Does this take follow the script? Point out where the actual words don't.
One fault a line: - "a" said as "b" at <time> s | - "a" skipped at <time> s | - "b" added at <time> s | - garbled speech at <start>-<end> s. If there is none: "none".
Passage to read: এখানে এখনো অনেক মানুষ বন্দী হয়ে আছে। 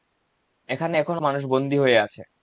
- "অনেক" skipped at 1.2 s